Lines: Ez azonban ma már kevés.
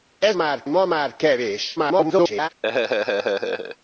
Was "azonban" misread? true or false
true